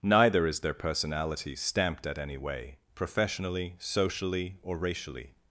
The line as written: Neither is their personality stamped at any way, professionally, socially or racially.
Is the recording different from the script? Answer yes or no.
no